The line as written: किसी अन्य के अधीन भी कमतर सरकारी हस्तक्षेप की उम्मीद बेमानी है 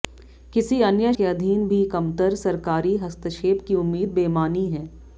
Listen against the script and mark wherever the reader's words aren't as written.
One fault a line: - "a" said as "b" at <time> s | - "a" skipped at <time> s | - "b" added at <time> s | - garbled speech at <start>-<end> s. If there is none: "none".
none